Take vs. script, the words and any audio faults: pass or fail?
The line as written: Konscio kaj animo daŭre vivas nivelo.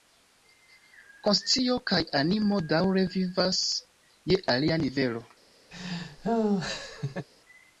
fail